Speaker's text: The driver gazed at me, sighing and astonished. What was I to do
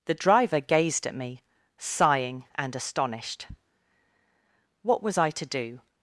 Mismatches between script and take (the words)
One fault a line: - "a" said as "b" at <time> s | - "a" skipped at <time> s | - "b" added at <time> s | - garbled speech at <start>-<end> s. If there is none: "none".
none